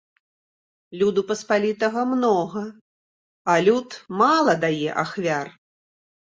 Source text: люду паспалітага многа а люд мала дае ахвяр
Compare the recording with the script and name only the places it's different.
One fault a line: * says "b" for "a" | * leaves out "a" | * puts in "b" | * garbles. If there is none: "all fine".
all fine